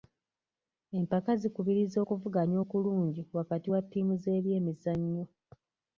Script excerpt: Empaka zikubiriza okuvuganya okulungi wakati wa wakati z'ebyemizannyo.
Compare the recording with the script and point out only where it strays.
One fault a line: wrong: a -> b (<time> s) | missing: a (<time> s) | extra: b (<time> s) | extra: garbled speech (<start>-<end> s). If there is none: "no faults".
wrong: wakati -> ttiimu (3.8 s)